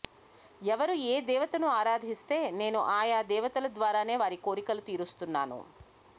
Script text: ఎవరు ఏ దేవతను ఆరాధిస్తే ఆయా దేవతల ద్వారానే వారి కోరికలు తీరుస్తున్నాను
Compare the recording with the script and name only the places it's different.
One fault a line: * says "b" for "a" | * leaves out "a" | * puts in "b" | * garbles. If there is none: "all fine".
* puts in "నేను"